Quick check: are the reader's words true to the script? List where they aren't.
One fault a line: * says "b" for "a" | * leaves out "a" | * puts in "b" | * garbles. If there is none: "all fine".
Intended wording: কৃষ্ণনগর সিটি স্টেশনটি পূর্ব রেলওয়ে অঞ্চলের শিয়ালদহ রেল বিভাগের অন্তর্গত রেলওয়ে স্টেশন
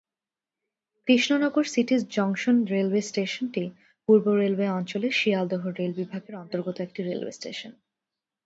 * puts in "জংশন রেলওয়ে"
* puts in "একটি"